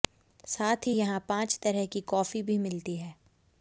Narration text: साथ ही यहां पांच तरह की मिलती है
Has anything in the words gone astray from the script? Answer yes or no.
yes